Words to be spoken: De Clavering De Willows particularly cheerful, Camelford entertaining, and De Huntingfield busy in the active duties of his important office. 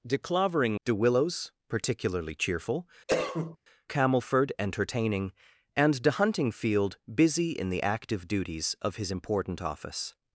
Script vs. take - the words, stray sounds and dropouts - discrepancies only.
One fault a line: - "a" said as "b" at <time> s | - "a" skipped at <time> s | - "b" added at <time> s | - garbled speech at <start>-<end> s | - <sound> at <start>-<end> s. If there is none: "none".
- cough at 3.1-3.6 s